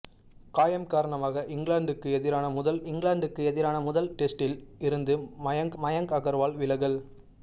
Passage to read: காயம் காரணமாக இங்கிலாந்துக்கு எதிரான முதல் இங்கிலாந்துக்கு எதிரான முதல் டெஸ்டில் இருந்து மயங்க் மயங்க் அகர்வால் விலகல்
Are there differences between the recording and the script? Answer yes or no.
no